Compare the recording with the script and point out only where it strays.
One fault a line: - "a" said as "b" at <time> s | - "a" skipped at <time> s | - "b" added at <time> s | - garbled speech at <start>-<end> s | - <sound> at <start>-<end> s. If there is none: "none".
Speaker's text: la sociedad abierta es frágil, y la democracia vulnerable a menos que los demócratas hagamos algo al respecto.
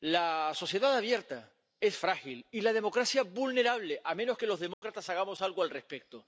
- dropout at 4.7-4.8 s